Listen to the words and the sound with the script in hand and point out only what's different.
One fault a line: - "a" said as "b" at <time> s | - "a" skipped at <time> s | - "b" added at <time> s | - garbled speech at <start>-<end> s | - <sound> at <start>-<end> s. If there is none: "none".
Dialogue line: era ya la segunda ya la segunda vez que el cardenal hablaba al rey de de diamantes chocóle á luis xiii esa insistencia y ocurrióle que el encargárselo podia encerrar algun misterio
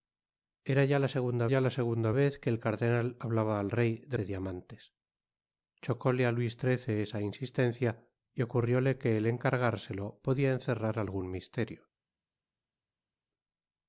none